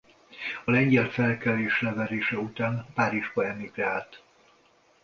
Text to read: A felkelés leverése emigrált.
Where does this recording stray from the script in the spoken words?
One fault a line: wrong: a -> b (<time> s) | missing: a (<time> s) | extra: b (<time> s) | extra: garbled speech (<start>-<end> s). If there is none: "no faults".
extra: lengyel (0.7 s)
extra: után Párizsba (2.4 s)